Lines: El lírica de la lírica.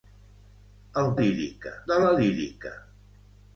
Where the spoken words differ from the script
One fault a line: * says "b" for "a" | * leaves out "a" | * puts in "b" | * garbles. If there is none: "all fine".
all fine